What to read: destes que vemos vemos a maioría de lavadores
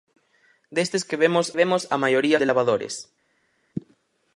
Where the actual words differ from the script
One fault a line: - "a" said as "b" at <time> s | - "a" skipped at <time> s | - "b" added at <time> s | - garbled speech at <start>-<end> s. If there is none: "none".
none